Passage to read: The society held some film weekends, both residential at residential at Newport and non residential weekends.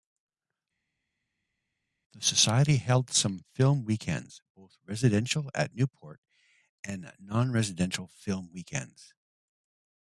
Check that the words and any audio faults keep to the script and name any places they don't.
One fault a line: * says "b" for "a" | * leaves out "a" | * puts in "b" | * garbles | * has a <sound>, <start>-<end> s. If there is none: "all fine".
* leaves out "residential at"
* puts in "film"